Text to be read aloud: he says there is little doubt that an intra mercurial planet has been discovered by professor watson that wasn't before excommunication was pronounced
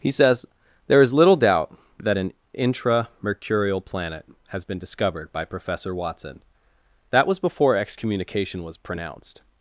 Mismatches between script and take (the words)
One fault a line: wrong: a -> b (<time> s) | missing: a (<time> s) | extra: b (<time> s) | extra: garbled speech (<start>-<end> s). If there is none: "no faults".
wrong: wasn't -> was (7.2 s)